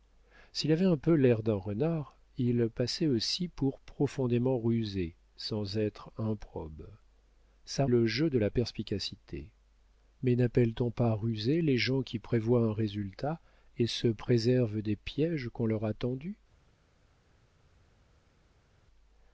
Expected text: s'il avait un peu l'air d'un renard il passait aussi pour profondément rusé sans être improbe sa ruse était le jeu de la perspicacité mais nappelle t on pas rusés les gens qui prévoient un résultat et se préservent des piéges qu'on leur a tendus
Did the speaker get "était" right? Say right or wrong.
wrong